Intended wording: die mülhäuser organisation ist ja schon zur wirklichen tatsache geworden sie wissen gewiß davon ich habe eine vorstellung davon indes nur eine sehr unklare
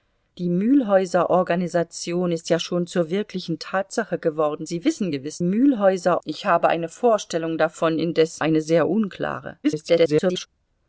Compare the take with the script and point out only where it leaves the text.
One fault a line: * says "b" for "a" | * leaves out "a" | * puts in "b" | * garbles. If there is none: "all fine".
* says "mülhäuser" for "davon"
* leaves out "nur"
* garbles